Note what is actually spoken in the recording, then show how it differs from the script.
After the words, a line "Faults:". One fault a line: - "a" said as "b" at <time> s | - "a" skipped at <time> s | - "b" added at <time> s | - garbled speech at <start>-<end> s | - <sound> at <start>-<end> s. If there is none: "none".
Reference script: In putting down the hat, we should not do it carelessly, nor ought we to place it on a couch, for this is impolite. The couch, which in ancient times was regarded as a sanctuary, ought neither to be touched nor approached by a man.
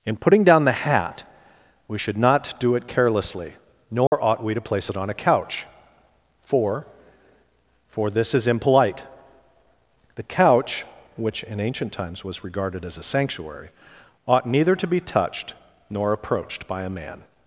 In putting down the hat, we should not do it carelessly, nor ought we to place it on a couch, for for this is impolite. The couch, which in ancient times was regarded as a sanctuary, ought neither to be touched nor approached by a man.
Faults:
- dropout at 4.1-4.1 s
- "for" added at 7.9 s